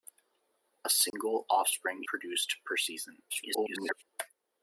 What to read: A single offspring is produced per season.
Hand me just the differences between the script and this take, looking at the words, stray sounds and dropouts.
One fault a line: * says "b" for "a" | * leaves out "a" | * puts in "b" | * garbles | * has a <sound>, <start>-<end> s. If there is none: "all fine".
* has a dropout, 1.1-1.1 s
* leaves out "is"
* garbles